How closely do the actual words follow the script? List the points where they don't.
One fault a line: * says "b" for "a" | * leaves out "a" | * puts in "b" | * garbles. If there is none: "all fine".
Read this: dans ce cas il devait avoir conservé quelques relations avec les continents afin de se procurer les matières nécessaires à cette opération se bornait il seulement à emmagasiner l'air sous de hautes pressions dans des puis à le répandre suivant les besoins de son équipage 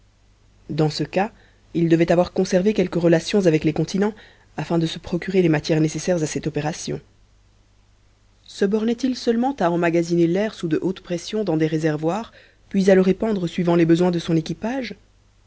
* puts in "réservoirs"